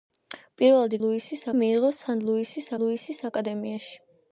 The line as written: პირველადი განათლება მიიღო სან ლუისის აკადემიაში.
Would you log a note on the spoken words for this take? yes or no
yes